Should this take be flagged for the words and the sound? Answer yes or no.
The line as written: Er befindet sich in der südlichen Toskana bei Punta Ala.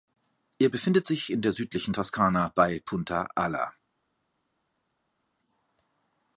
no